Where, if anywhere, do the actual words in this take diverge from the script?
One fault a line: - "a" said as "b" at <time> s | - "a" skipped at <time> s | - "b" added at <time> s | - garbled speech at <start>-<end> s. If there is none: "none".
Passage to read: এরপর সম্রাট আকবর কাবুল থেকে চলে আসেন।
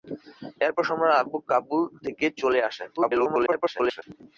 - garbled speech at 3.0-4.0 s